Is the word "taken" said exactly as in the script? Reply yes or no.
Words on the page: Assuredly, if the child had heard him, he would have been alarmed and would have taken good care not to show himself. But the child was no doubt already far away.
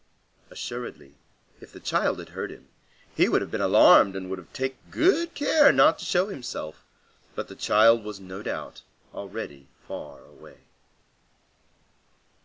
yes